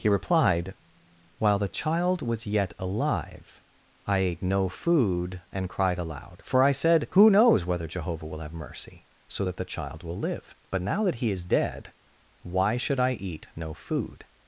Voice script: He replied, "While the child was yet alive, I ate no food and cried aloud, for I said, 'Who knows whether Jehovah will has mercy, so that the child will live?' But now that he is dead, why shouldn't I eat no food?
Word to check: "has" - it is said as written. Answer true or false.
false